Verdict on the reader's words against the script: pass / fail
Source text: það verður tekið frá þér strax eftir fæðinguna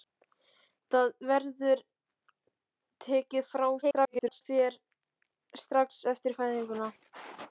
fail